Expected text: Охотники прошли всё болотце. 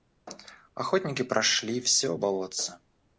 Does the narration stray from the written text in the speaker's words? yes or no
no